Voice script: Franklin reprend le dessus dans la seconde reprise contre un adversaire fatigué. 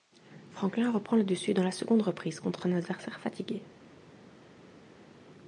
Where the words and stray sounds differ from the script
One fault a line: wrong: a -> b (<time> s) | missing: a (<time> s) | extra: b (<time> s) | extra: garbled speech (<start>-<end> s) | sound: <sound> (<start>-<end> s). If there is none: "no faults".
no faults